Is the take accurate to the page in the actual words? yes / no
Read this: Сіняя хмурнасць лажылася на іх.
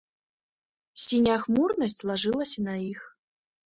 yes